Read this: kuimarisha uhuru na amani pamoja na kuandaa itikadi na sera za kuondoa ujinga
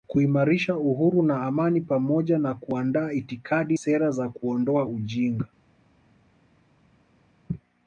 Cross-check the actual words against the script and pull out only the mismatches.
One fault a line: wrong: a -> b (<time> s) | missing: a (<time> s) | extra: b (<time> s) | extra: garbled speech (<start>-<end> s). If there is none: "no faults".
missing: na (3.8 s)